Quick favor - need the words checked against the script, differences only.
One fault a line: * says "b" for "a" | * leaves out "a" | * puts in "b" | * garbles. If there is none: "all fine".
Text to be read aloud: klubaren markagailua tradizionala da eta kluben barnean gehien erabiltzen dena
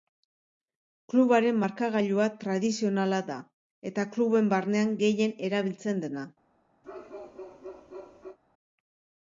all fine